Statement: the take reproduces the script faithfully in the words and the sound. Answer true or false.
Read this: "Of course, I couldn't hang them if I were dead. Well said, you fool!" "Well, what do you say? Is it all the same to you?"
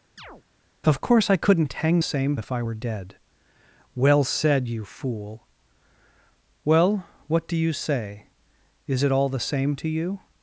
false